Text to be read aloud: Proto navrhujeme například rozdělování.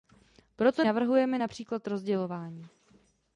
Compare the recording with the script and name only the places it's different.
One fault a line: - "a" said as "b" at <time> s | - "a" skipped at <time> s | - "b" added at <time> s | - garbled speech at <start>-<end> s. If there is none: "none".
none